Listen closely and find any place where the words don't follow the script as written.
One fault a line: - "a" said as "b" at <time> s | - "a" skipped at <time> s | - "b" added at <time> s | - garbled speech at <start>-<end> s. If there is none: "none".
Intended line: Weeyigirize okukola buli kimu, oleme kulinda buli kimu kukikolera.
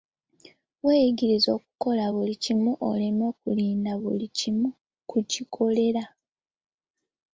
none